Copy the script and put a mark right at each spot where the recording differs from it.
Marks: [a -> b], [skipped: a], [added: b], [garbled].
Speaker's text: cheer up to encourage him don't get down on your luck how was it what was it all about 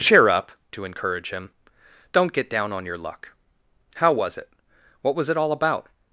cheer up to encourage him don't get down on your luck how was it what was it all about